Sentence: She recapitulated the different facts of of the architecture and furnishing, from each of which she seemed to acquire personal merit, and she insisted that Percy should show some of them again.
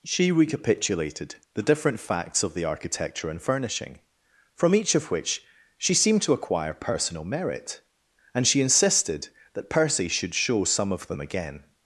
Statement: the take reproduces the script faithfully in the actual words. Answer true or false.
false